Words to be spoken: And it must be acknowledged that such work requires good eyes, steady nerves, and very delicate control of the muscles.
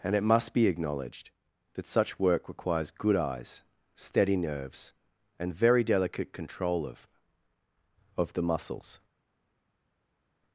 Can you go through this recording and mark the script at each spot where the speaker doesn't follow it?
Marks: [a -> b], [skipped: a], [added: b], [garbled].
And it must be acknowledged that such work requires good eyes, steady nerves, and very delicate control of [added: of] the muscles.